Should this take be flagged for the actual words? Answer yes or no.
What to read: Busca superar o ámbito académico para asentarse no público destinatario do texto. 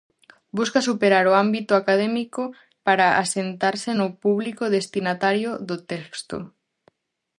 no